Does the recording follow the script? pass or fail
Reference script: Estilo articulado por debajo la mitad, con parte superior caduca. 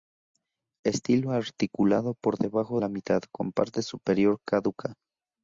pass